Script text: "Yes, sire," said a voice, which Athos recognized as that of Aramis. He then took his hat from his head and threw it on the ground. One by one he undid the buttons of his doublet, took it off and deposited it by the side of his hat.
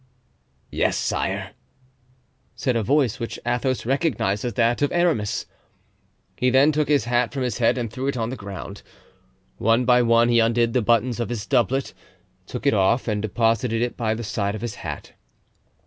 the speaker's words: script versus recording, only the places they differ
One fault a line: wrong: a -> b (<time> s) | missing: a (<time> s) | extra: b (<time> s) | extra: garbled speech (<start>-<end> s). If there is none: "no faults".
no faults